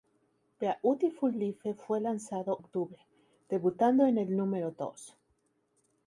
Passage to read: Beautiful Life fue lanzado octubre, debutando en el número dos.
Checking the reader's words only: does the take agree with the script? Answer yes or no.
yes